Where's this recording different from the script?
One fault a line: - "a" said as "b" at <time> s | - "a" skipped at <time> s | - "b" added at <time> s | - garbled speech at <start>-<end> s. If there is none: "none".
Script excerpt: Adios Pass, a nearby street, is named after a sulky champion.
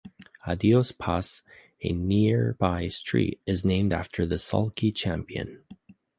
- "a" said as "the" at 4.2 s